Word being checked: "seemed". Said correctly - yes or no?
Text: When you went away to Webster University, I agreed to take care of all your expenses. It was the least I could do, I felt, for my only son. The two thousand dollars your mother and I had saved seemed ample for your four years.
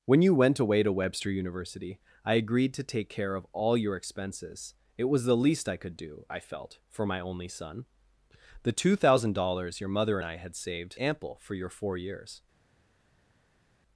no